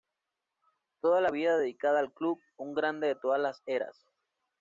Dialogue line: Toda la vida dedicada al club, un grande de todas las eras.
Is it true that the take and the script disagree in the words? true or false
false